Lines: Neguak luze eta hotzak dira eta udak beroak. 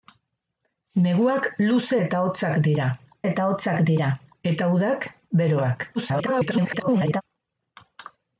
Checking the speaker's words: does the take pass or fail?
fail